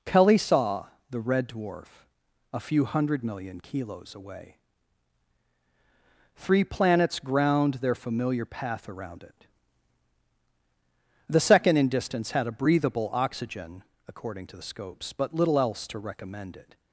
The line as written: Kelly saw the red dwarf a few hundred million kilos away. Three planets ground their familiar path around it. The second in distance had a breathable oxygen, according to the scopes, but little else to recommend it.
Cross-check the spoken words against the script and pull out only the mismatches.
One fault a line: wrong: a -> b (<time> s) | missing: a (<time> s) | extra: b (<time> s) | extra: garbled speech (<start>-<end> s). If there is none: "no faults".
no faults